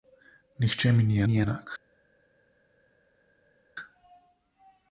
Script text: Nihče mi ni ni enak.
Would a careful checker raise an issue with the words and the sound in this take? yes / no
no